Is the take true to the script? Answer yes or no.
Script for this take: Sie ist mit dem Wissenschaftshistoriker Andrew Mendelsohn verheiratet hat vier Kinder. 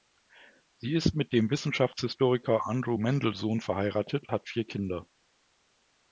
yes